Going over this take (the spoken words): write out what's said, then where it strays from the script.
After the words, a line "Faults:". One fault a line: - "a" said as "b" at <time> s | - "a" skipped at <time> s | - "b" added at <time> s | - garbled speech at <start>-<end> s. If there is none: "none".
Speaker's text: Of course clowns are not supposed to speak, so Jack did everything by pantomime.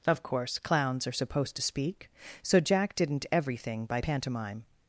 Of course clowns are supposed to speak, so Jack didn't everything by pantomime.
Faults:
- "not" skipped at 1.1 s
- "did" said as "didn't" at 2.9 s